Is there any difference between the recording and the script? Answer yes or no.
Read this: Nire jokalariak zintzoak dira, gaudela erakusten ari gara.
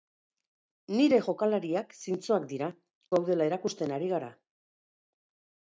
no